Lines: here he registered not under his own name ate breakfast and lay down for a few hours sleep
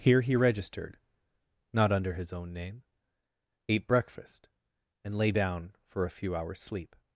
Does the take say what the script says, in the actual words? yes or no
yes